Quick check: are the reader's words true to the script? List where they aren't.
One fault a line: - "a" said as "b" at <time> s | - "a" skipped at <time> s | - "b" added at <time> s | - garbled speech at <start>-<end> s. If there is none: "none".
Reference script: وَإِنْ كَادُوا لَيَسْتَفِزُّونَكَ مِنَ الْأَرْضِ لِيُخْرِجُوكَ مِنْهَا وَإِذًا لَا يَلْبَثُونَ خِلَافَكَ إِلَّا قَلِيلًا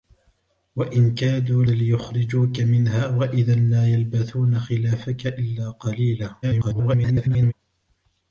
- "لَيَسْتَفِزُّونَكَ مِنَ الْأَرْضِ" skipped at 1.6 s
- garbled speech at 6.4-7.5 s